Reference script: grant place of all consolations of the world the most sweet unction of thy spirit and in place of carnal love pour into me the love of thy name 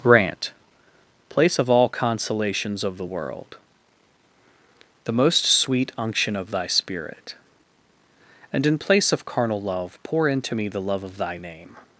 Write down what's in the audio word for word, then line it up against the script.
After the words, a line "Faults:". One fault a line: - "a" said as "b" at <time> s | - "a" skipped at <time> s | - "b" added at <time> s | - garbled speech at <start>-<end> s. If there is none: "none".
grant place of all consolations of the world the most sweet unction of thy spirit and in place of carnal love pour into me the love of thy name
Faults:
none